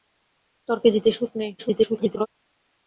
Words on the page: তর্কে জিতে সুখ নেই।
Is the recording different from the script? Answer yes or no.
yes